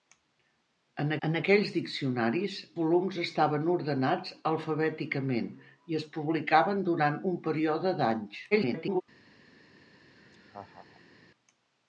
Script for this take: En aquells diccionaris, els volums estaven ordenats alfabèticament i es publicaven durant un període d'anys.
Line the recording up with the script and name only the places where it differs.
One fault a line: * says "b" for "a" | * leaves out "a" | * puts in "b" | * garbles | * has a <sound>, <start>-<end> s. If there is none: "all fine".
* puts in "en"
* leaves out "els"
* garbles
* has a laugh, 10.1-11.2 s